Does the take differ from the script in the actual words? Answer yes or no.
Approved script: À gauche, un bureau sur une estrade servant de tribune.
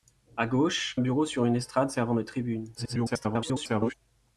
yes